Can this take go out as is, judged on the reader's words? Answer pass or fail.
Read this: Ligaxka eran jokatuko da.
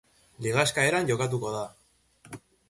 pass